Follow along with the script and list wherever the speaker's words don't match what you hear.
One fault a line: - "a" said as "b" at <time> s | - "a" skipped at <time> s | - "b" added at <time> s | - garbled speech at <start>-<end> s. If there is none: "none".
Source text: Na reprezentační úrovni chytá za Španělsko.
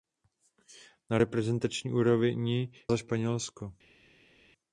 - "chytá" skipped at 2.7 s